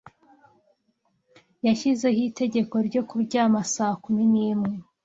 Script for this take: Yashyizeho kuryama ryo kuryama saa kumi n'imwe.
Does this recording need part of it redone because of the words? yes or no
yes